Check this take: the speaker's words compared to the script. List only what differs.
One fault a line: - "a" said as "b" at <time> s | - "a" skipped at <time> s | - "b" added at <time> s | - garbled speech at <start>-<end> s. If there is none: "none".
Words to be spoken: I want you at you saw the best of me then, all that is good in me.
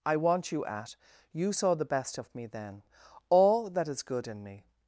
none